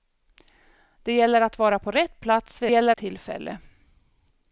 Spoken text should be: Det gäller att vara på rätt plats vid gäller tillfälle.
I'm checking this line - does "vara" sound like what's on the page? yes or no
yes